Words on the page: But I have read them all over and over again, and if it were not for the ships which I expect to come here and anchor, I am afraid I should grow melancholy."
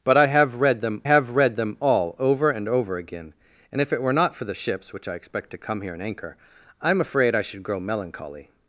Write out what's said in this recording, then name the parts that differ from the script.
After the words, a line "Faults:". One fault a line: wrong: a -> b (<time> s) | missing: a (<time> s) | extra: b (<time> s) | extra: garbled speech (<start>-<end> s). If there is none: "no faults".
But I have read them have read them all over and over again, and if it were not for the ships which I expect to come here and anchor, I am afraid I should grow melancholy."
Faults:
extra: have read them (1.0 s)